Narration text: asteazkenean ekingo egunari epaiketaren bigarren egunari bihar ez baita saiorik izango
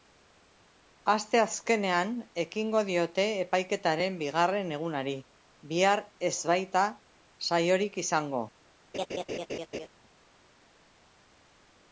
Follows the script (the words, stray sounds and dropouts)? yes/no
no